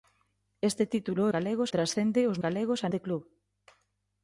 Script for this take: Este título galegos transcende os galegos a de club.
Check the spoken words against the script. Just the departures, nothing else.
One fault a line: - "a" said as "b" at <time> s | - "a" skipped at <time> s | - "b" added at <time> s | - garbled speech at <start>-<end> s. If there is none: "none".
none